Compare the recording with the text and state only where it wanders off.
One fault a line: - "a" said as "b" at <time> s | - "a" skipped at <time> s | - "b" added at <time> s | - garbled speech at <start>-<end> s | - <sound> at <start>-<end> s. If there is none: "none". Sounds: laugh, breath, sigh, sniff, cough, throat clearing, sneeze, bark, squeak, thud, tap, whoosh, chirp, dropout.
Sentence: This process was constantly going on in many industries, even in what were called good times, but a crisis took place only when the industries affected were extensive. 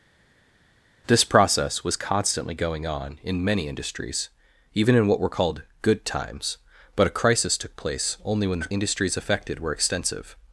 none